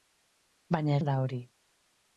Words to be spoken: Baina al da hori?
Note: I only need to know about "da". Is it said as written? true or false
true